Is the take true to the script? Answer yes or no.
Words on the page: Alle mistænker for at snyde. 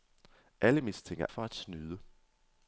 yes